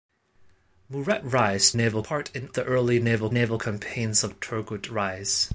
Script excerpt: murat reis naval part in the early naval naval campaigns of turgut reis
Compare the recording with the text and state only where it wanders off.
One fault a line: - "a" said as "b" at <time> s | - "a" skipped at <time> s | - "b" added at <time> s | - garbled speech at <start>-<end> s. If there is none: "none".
none